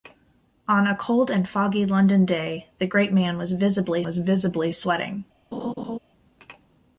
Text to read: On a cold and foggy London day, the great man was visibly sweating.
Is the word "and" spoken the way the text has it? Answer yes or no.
yes